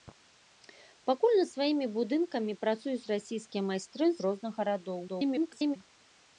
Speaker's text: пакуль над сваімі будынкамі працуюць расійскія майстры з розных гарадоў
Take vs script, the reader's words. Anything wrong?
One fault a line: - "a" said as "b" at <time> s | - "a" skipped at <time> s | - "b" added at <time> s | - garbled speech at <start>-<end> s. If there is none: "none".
- garbled speech at 5.1-5.8 s